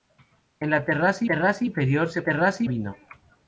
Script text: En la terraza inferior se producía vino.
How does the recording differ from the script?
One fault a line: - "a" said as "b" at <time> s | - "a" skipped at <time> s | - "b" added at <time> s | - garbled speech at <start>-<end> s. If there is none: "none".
- "terraza" added at 1.2 s
- "producía" said as "terraza" at 2.2 s